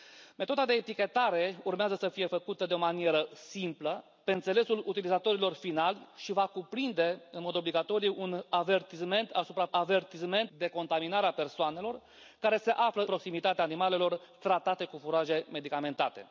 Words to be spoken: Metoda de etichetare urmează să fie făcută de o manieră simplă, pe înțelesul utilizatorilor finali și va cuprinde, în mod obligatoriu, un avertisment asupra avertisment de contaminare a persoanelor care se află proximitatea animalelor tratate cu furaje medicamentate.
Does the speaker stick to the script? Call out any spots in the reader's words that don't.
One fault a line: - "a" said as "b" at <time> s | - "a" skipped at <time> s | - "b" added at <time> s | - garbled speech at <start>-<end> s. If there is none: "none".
none